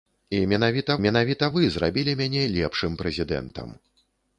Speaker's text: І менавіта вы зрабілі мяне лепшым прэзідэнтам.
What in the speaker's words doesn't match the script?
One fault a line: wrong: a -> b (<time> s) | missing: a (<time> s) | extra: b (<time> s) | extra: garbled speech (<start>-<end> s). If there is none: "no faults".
extra: менавіта (1.0 s)